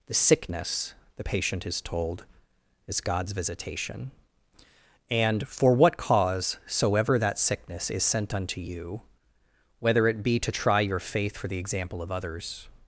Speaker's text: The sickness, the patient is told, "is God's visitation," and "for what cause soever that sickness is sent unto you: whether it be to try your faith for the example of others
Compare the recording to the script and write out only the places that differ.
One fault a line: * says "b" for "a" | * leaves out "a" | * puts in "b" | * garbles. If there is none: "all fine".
all fine